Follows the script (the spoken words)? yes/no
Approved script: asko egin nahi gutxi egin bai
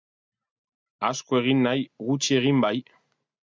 yes